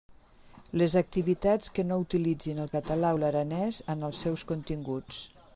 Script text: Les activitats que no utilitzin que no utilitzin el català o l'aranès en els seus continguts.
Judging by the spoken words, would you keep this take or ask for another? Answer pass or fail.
fail